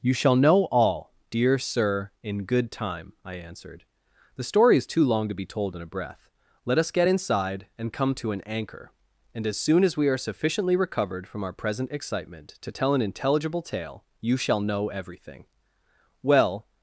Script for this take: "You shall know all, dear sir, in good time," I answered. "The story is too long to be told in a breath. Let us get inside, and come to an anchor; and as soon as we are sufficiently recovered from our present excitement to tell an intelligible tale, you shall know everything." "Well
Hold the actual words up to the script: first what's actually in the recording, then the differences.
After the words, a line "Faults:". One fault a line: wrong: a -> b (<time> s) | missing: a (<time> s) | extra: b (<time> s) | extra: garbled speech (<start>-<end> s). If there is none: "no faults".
"You shall know all, dear sir, in good time," I answered. "The story is too long to be told in a breath. Let us get inside, and come to an anchor; and as soon as we are sufficiently recovered from our present excitement to tell an intelligible tale, you shall know everything." "Well
Faults:
no faults